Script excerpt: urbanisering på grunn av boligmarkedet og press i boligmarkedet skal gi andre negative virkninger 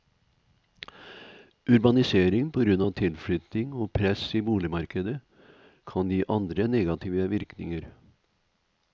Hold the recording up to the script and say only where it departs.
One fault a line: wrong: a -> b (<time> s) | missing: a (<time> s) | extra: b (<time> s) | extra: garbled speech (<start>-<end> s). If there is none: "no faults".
wrong: boligmarkedet -> tilflytting (3.0 s)
wrong: skal -> kan (5.9 s)